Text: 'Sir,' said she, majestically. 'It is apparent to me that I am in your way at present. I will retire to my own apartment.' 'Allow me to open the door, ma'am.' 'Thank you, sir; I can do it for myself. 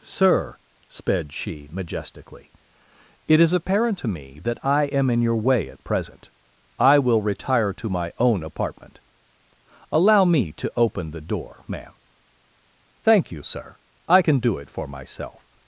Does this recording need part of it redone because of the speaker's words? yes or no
yes